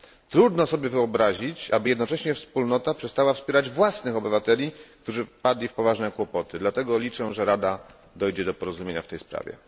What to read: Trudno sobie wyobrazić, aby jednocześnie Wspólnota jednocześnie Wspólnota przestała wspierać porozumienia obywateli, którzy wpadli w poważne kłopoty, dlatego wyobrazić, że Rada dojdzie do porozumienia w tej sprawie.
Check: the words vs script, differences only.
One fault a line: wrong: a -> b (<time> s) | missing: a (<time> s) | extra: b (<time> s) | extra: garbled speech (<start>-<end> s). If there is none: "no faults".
missing: jednocześnie Wspólnota (2.9 s)
wrong: porozumienia -> własnych (3.7 s)
wrong: wyobrazić -> liczę (7.0 s)